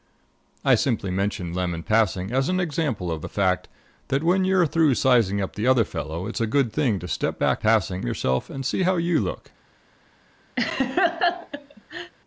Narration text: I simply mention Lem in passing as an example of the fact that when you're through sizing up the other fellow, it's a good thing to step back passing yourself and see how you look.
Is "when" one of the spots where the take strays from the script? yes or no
no